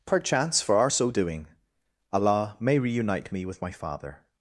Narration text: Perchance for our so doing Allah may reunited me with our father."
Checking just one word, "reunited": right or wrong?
wrong